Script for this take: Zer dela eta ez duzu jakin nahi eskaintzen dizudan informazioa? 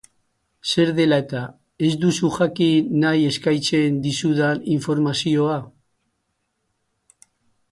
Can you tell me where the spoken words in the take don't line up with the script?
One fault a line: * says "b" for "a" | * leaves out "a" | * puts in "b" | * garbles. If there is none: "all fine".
all fine